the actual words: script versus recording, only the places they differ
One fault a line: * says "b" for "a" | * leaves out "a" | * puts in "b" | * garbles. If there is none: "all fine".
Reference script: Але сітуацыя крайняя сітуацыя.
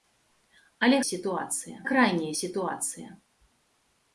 all fine